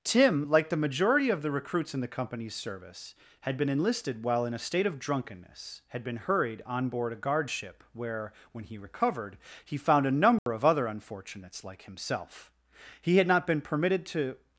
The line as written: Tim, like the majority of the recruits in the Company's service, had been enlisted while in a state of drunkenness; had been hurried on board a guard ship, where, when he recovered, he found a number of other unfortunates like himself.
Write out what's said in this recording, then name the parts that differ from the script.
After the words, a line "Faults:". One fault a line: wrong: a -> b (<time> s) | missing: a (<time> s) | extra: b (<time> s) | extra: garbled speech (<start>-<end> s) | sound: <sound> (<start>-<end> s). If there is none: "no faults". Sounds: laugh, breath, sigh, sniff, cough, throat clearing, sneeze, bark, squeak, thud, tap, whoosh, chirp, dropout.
Tim, like the majority of the recruits in the Company's service, had been enlisted while in a state of drunkenness; had been hurried on board a guard ship, where, when he recovered, he found a number of other unfortunates like himself. He had not been permitted to
Faults:
sound: dropout (10.4-10.5 s)
extra: He had not been permitted to (13.0 s)